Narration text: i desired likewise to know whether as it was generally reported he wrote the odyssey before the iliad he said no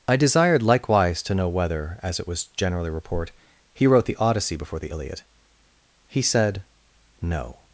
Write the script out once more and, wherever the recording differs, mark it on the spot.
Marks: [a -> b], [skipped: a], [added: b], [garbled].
i desired likewise to know whether as it was generally [reported -> report] he wrote the odyssey before the iliad he said no